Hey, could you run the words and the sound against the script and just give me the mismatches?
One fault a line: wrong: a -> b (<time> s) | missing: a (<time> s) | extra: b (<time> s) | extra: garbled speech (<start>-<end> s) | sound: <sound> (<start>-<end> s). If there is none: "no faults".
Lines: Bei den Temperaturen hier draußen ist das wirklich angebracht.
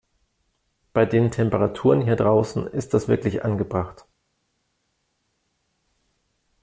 no faults